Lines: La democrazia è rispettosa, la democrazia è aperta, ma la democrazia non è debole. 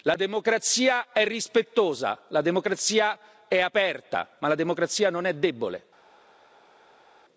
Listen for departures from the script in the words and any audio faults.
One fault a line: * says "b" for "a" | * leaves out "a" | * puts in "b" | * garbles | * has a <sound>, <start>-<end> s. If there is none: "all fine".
all fine